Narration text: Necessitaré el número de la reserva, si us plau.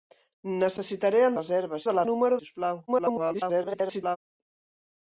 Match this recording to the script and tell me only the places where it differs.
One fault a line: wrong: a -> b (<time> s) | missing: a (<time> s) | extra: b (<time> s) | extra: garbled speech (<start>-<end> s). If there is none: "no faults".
wrong: número -> reserva (1.4 s)
wrong: reserva -> número (2.1 s)
extra: garbled speech (2.9-4.2 s)